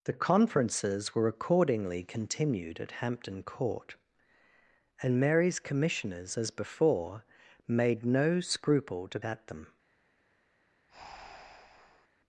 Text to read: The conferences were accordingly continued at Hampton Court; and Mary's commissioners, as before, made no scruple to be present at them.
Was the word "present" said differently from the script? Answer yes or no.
yes